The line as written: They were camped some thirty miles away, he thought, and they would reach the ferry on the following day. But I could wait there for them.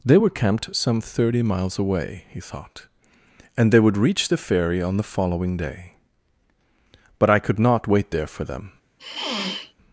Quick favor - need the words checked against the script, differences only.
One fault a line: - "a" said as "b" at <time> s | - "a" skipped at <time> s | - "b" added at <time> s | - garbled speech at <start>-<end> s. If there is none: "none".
- "not" added at 7.6 s